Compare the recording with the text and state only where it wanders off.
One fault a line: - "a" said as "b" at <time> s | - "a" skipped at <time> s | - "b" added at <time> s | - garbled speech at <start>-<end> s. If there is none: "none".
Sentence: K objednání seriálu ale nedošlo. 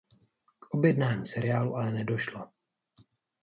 none